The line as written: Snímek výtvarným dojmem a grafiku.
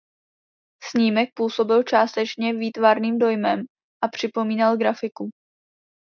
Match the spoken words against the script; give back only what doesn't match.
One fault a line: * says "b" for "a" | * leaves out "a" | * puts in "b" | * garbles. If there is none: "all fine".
* puts in "působil částečně"
* puts in "připomínal"